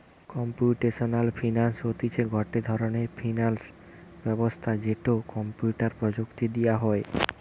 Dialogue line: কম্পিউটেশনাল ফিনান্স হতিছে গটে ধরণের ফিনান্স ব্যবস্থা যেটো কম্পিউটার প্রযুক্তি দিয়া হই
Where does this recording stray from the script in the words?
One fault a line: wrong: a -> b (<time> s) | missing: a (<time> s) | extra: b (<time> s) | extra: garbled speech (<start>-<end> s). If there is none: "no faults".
no faults